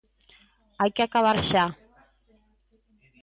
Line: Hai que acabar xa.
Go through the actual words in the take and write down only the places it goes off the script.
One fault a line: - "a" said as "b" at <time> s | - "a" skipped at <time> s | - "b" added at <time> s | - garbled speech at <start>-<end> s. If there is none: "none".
none